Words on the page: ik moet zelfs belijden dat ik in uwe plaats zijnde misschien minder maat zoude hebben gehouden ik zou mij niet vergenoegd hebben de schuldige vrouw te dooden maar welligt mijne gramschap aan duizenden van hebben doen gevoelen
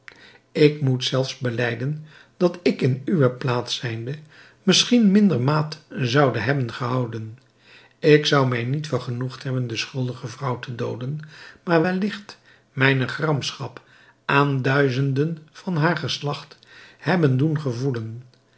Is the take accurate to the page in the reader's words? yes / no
no